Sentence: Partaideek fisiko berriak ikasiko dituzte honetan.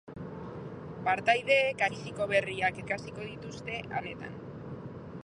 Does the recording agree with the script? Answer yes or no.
yes